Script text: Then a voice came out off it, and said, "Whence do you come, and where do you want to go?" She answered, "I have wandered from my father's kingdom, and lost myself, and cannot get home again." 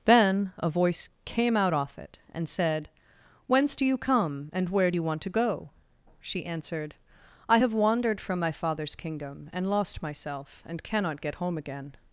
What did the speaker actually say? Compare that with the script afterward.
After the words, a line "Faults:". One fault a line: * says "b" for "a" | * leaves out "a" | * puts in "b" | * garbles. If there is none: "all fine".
Then a voice came out off it, and said, "Whence do you come, and where do you want to go?" She answered, "I have wandered from my father's kingdom, and lost myself, and cannot get home again."
Faults:
all fine